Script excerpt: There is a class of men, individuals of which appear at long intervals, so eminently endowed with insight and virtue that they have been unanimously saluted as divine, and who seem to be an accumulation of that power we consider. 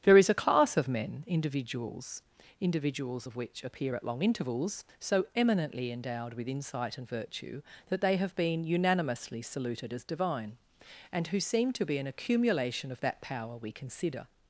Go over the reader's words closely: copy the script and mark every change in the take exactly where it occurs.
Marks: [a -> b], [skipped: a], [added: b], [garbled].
There is a class of men, individuals [added: individuals] of which appear at long intervals, so eminently endowed with insight and virtue that they have been unanimously saluted as divine, and who seem to be an accumulation of that power we consider.